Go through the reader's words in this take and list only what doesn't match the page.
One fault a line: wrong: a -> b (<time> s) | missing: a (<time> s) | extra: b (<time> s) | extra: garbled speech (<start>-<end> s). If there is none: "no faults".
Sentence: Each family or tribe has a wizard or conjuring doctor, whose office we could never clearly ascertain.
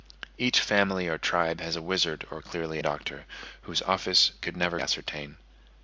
wrong: conjuring -> clearly (2.4 s)
missing: we (4.3 s)
missing: clearly (4.8 s)